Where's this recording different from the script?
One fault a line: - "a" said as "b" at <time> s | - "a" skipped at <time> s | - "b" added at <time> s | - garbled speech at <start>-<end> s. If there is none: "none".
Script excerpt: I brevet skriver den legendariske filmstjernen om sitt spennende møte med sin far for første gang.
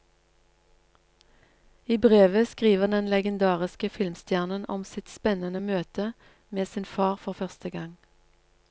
none